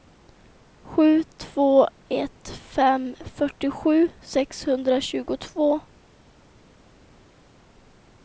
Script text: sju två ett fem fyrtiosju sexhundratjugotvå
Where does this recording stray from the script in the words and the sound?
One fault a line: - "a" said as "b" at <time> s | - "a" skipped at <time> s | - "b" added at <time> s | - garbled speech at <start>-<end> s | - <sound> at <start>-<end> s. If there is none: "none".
none